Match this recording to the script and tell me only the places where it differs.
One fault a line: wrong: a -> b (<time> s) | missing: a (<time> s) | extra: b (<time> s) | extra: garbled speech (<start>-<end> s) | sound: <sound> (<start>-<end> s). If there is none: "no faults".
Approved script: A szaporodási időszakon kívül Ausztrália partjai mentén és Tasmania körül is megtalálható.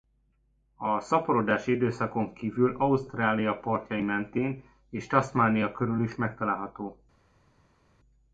no faults